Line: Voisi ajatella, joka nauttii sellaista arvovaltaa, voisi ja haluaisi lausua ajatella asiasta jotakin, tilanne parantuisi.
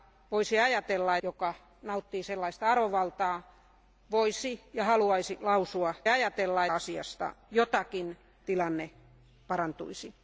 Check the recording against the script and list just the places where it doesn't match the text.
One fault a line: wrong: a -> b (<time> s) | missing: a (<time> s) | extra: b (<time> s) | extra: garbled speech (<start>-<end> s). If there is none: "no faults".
no faults